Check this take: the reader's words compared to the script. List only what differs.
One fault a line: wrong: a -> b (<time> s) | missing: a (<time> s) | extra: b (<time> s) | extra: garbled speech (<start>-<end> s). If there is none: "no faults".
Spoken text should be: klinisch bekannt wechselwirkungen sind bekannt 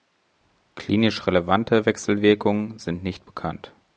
wrong: bekannt -> relevante (1.3 s)
extra: nicht (3.0 s)